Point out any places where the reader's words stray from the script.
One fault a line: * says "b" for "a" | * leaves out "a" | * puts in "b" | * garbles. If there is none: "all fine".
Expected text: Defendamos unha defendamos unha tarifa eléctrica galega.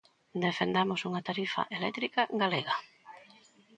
* leaves out "defendamos unha"